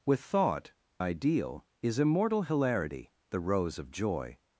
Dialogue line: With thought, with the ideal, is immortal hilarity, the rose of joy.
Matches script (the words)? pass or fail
fail